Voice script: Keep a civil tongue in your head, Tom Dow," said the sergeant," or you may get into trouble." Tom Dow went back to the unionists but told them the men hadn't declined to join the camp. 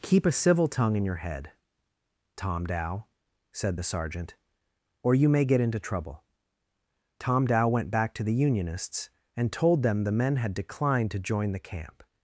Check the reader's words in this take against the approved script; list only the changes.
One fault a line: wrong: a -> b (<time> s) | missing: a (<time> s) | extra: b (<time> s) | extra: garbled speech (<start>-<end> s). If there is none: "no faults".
wrong: but -> and (9.4 s)
wrong: hadn't -> had (10.4 s)